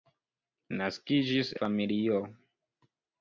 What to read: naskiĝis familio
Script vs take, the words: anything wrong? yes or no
no